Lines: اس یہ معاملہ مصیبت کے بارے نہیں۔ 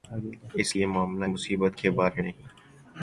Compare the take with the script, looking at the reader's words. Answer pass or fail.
pass